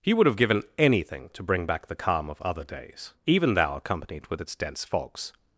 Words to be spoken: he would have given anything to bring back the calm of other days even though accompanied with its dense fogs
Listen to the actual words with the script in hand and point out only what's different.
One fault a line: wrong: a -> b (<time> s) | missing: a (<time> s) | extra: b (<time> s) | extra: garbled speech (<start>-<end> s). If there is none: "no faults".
wrong: though -> thou (3.5 s)